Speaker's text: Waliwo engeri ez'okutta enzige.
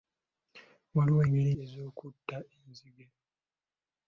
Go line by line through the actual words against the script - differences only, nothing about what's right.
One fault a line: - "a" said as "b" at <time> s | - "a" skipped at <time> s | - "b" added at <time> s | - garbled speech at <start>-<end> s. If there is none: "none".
none